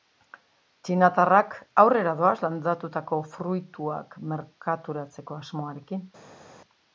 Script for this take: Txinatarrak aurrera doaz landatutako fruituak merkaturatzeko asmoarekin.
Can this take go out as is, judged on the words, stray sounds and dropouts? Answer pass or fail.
pass